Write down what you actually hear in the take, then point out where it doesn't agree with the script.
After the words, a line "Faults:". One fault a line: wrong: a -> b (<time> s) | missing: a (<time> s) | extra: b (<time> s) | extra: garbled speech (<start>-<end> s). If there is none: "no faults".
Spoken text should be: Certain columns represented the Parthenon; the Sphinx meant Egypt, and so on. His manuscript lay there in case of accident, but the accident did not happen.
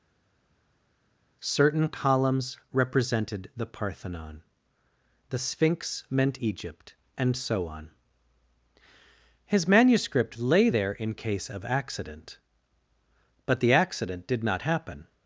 Certain columns represented the Parthenon; the Sphinx meant Egypt, and so on. His manuscript lay there in case of accident, but the accident did not happen.
Faults:
no faults